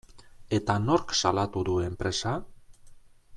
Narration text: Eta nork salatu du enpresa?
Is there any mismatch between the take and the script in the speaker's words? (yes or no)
no